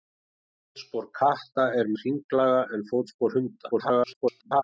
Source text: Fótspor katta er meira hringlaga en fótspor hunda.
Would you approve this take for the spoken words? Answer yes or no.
no